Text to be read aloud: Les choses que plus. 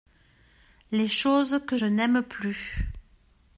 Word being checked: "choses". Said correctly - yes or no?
yes